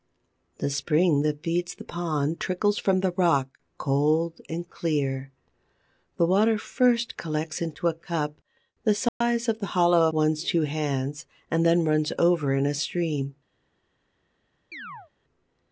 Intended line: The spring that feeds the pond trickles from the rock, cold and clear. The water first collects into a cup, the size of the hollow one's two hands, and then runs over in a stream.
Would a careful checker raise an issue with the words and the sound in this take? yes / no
yes